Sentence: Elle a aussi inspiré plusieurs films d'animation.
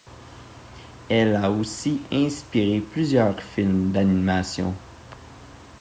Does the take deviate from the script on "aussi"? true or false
false